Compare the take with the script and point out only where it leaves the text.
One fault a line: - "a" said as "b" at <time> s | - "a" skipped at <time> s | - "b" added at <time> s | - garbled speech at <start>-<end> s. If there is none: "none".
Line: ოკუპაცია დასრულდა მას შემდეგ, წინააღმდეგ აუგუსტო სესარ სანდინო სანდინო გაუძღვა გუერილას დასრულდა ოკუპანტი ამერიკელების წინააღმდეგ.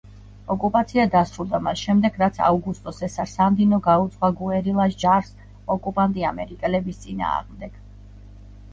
- "წინააღმდეგ" said as "რაც" at 2.2 s
- "სანდინო" skipped at 3.8 s
- "დასრულდა" said as "ჯარს" at 5.1 s